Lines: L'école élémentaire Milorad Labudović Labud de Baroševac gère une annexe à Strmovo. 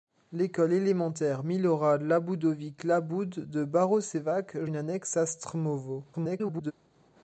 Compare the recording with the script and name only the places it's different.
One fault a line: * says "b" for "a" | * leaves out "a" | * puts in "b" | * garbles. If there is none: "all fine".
* leaves out "gère"
* garbles